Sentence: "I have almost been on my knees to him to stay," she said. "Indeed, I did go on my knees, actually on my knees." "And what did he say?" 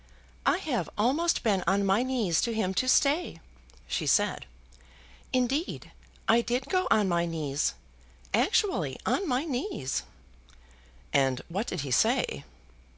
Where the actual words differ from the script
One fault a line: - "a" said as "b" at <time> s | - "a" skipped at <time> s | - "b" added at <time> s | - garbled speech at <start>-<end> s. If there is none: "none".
none